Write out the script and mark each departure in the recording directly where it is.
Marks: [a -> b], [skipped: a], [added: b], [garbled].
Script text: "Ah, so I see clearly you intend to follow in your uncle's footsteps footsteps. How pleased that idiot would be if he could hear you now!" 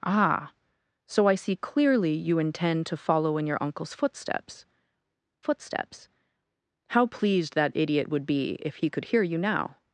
"Ah, so I see clearly you intend to follow in your uncle's footsteps footsteps. How pleased that idiot would be if he could hear you now!"